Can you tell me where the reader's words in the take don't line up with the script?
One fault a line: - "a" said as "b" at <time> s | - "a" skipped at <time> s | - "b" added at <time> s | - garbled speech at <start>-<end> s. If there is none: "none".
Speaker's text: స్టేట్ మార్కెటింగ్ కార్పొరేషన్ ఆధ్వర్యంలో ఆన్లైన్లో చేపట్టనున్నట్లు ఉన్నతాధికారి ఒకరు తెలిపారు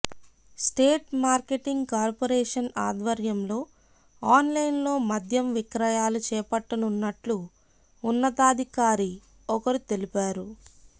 - "మద్యం విక్రయాలు" added at 5.1 s